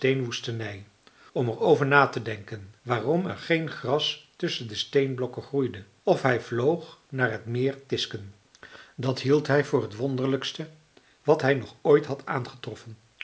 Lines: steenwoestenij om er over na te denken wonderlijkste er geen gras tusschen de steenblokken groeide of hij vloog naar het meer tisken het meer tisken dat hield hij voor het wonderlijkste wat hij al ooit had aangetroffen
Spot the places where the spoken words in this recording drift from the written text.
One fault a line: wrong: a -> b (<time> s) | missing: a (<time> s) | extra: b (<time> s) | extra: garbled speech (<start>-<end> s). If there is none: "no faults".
wrong: wonderlijkste -> waarom (2.8 s)
missing: het meer tisken (8.3 s)
wrong: al -> nog (11.5 s)